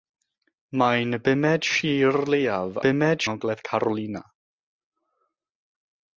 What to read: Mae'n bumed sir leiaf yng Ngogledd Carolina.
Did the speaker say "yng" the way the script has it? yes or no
no